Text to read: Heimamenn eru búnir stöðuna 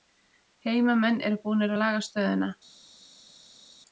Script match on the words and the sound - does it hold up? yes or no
no